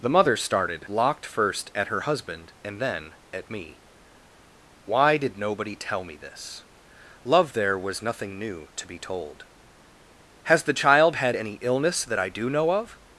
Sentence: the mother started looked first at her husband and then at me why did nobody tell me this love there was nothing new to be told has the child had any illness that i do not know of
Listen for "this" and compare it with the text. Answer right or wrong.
right